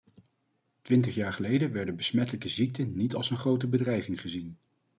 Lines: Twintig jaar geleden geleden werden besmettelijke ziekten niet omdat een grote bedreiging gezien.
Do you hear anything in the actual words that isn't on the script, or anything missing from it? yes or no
yes